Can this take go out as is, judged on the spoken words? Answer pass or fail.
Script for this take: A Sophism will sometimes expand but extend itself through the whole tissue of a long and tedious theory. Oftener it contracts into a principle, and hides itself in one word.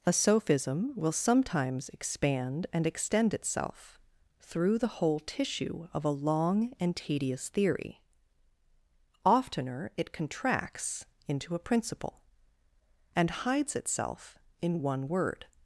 fail